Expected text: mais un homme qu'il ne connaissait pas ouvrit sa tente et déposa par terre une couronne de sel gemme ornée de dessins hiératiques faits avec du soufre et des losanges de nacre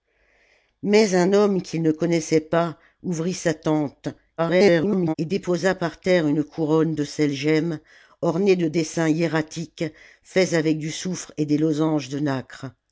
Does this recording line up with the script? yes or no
no